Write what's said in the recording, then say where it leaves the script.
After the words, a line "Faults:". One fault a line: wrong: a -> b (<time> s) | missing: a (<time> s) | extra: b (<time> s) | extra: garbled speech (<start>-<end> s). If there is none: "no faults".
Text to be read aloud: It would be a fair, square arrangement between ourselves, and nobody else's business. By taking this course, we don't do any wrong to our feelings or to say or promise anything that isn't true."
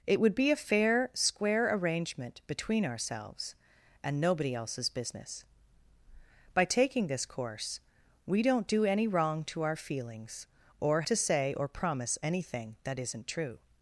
It would be a fair, square arrangement between ourselves, and nobody else's business. By taking this course, we don't do any wrong to our feelings or to say or promise anything that isn't true."
Faults:
no faults